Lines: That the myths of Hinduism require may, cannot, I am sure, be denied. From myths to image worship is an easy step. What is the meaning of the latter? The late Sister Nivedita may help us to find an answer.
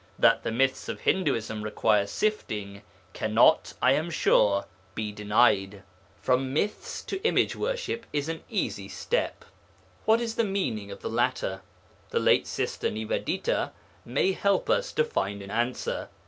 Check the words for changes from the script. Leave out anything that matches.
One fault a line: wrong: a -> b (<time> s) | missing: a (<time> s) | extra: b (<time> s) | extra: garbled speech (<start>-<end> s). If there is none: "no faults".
wrong: may -> sifting (2.1 s)